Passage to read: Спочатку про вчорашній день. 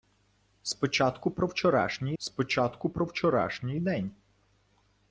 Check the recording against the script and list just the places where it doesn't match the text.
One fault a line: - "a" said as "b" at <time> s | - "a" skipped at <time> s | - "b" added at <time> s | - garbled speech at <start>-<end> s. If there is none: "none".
- "спочатку про вчорашній" added at 2.2 s